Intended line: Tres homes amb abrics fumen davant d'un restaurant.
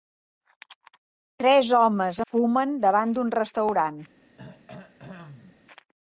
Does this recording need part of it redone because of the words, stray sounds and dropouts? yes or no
yes